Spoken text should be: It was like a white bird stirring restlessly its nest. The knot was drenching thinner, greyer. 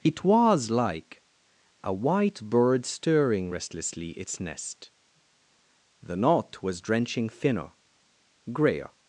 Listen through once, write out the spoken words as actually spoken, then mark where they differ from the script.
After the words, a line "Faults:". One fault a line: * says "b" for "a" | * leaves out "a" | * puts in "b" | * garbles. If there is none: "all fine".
It was like a white bird stirring restlessly its nest. The knot was drenching thinner, greyer.
Faults:
all fine